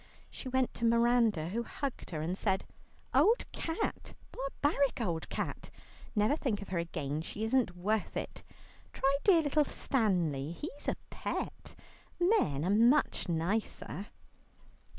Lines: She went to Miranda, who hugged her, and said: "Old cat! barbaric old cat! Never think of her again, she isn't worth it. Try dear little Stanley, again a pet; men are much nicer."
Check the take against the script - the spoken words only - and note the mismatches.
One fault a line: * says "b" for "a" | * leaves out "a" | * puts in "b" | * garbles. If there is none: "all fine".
* says "he's" for "again"